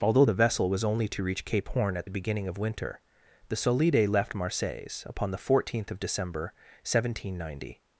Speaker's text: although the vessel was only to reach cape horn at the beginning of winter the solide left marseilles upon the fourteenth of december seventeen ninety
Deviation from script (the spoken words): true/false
false